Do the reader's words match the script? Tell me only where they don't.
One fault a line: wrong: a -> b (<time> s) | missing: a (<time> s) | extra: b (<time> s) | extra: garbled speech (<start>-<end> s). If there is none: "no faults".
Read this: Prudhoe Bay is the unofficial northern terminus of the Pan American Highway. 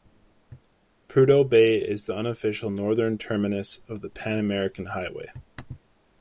no faults